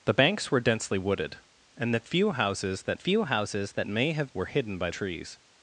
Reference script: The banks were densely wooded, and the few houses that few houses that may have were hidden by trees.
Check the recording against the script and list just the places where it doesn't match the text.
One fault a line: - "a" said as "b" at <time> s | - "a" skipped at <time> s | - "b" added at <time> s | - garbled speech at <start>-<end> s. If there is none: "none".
none